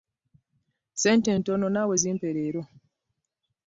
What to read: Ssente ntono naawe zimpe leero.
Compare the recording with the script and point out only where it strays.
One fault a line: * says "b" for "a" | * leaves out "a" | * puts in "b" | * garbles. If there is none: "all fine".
all fine